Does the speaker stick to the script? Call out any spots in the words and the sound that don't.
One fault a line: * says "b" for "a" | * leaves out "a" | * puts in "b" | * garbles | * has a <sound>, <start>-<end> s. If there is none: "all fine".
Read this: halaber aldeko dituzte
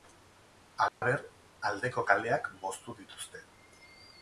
* has a dropout, 0.9-1.0 s
* puts in "kaleak moztu"